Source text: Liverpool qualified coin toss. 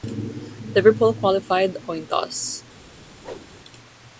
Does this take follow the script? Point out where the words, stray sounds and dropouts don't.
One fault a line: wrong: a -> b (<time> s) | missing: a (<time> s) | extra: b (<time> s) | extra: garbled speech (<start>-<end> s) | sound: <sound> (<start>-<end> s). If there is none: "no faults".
sound: whoosh (3.2-3.5 s)